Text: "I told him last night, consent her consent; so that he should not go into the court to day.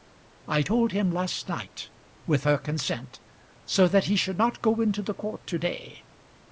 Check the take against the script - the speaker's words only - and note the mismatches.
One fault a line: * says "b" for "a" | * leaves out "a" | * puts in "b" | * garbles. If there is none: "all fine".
* says "with" for "consent"